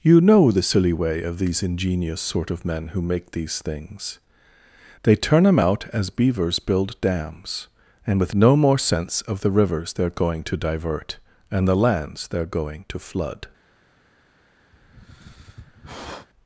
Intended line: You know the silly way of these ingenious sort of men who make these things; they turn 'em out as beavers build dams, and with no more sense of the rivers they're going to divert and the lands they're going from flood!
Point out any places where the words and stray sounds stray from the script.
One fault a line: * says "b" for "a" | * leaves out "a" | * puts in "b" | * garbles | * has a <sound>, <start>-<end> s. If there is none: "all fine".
* says "to" for "from"
* has a sigh, 14.7-16.3 s